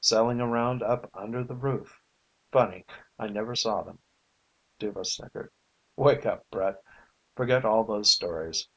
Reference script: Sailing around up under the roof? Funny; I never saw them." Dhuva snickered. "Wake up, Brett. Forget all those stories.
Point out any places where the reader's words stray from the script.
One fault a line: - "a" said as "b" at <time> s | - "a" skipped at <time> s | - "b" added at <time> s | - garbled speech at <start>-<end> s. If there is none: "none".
none